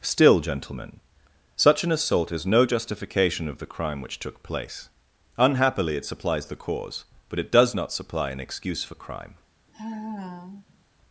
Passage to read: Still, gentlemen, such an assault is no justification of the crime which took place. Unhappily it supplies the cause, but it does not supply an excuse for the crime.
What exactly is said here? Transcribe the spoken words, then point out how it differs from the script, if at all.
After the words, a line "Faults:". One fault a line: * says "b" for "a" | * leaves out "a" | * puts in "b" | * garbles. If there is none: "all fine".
Still, gentlemen, such an assault is no justification of the crime which took place. Unhappily it supplies the cause, but it does not supply an excuse for crime.
Faults:
* leaves out "the"